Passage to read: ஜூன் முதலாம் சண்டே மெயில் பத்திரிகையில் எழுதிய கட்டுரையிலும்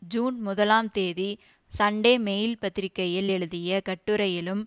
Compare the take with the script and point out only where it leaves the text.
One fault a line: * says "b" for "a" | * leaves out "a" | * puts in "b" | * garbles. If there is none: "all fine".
* puts in "தேதி"